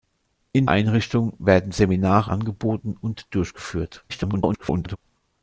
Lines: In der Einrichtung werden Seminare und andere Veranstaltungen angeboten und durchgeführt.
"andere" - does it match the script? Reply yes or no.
no